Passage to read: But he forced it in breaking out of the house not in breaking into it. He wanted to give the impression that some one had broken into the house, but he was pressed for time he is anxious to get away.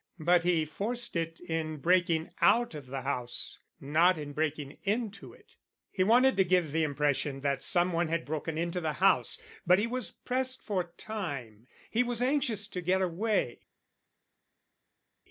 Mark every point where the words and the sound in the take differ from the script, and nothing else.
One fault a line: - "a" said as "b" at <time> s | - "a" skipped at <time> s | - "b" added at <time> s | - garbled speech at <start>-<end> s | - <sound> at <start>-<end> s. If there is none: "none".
- "is" said as "was" at 12.0 s